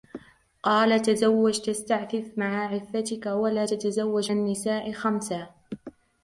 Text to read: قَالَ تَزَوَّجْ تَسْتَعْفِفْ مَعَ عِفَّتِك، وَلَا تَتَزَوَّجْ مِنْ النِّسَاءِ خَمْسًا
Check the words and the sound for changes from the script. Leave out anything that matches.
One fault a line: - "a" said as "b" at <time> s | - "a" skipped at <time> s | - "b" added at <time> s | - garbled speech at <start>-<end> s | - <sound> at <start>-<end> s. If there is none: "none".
- "مِنْ" skipped at 4.3 s